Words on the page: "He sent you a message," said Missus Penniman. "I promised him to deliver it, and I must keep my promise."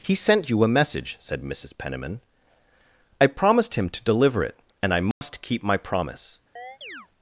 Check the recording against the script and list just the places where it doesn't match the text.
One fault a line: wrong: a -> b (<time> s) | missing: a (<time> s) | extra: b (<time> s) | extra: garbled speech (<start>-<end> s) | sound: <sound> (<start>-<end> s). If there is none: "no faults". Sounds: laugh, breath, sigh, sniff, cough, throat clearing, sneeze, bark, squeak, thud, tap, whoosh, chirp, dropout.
sound: dropout (5.1-5.2 s)
sound: chirp (6.6-7.1 s)